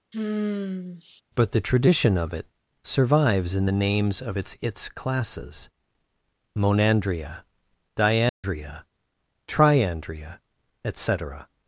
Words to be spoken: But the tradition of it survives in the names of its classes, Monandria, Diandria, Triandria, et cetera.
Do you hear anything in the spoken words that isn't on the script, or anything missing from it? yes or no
yes